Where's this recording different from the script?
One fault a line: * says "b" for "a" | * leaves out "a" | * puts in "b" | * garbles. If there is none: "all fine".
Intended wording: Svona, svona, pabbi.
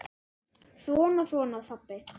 all fine